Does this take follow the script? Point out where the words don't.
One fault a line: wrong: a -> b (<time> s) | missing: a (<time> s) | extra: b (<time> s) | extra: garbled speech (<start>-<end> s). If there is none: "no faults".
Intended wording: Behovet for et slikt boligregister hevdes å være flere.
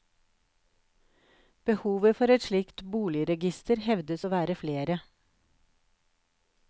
no faults